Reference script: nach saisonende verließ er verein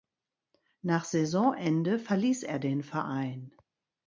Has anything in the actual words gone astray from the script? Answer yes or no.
yes